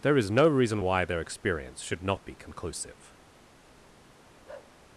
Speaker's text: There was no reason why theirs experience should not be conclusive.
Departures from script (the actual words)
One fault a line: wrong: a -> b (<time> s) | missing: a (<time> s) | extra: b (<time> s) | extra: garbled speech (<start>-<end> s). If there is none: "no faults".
wrong: was -> is (0.2 s)
wrong: theirs -> their (1.0 s)